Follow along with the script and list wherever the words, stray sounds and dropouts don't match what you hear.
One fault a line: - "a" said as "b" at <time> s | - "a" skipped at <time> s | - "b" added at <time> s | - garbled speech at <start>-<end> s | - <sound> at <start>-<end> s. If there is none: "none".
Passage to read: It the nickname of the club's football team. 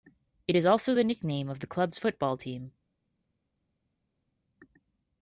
- "is also" added at 0.6 s